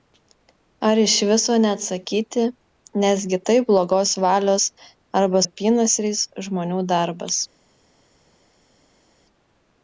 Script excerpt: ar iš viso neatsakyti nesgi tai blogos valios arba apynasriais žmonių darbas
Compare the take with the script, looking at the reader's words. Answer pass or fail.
pass